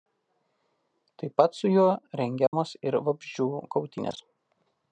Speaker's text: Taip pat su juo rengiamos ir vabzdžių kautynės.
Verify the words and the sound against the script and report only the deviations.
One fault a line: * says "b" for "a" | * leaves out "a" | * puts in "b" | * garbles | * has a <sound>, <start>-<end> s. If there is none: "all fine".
* has a dropout, 2.5-2.5 s